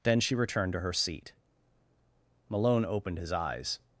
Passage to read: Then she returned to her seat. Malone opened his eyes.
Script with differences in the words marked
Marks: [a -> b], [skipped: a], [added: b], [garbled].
Then she returned to her seat. Malone opened his eyes.